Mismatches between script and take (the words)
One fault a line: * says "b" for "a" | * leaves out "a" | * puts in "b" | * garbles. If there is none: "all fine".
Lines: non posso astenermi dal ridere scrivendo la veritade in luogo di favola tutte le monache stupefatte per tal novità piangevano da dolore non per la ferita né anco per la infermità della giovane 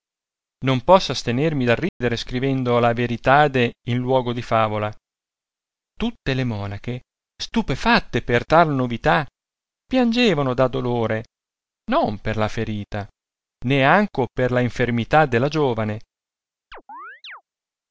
all fine